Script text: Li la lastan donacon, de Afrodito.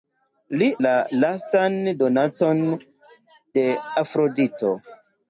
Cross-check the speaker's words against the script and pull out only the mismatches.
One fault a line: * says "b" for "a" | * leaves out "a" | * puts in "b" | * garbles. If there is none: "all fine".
all fine